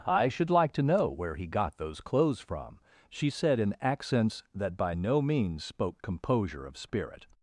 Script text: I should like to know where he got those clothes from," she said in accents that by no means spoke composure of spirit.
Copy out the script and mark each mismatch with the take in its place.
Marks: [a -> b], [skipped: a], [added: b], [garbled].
I should like to know where he got those clothes from," she said in accents that by no means spoke composure of spirit.